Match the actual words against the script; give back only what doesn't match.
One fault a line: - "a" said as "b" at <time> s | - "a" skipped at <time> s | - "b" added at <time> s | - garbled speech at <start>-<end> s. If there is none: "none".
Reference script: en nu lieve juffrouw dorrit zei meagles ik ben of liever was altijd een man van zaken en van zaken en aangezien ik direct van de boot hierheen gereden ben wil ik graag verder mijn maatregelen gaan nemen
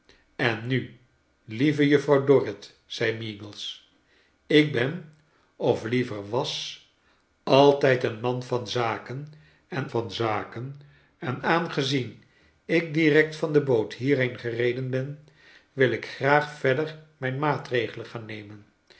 none